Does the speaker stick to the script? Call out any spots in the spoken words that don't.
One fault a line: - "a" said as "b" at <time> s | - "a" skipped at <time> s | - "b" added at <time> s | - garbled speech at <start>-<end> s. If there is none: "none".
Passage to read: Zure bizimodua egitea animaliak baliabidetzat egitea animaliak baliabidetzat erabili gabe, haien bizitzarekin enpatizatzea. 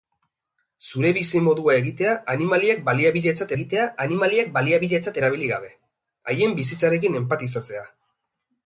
none